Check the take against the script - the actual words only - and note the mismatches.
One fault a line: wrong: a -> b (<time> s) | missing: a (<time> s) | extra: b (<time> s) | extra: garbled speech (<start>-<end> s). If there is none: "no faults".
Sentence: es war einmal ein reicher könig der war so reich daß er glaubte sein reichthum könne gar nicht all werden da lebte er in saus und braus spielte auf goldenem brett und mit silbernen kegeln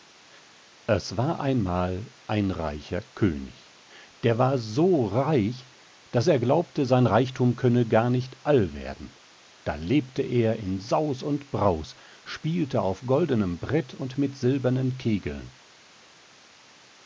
no faults